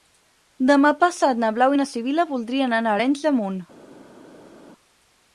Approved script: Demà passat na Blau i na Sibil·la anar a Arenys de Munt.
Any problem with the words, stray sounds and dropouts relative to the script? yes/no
yes